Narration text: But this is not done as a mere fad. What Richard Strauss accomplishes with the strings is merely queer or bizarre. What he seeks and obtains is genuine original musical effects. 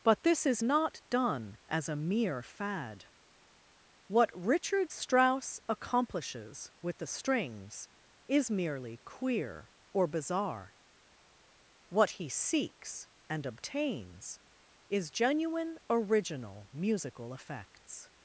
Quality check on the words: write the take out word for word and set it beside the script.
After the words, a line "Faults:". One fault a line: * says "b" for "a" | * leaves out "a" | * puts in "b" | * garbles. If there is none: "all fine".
But this is not done as a mere fad. What Richard Strauss accomplishes with the strings is merely queer or bizarre. What he seeks and obtains is genuine original musical effects.
Faults:
all fine